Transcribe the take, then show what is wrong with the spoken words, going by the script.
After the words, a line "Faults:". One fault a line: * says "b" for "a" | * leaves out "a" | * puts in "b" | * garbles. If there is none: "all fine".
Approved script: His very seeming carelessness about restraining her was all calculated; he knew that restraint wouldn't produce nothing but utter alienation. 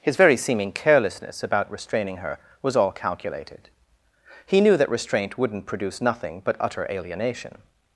His very seeming carelessness about restraining her was all calculated; he knew that restraint wouldn't produce nothing but utter alienation.
Faults:
all fine